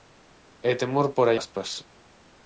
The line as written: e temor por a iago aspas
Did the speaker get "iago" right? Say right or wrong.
wrong